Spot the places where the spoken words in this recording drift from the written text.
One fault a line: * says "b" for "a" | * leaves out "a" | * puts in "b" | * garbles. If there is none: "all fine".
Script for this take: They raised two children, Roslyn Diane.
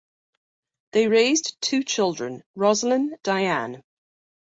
all fine